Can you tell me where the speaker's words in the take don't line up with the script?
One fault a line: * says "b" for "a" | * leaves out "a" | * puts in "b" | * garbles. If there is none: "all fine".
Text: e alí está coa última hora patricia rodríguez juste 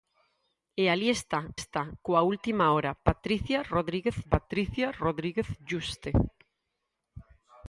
* puts in "está"
* puts in "patricia rodríguez"